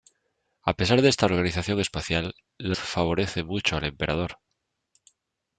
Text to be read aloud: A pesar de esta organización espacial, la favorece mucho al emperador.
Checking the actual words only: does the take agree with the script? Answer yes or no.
yes